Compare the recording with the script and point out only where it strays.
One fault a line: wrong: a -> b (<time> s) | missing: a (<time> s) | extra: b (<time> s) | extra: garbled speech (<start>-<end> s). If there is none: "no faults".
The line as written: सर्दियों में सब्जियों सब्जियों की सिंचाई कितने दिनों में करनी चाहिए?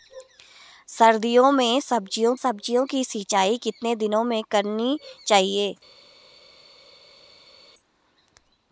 no faults